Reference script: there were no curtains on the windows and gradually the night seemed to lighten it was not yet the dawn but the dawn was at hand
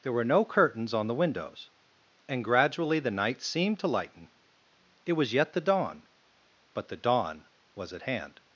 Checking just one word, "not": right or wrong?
wrong